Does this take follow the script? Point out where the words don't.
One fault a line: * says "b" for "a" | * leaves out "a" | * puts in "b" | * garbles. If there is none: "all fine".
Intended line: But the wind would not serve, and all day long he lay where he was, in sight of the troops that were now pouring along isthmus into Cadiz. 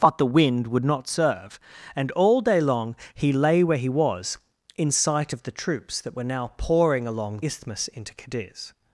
all fine